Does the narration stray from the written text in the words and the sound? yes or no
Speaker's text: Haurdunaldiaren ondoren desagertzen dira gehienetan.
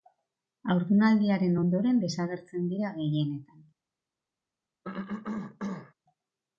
yes